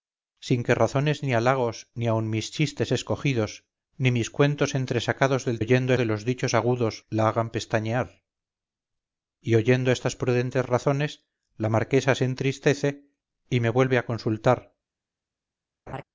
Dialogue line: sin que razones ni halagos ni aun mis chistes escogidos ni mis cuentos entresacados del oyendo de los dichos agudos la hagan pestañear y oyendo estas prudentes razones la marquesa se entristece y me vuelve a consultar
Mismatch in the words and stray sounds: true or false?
true